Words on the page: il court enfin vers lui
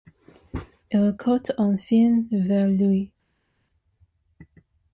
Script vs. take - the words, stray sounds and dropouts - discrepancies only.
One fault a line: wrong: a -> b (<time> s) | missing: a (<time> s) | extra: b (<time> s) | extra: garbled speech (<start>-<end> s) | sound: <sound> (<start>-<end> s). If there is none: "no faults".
no faults